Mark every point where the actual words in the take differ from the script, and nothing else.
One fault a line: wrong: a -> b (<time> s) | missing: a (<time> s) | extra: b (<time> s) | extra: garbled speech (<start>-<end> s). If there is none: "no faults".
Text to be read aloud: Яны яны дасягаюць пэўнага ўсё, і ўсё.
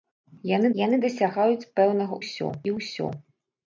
no faults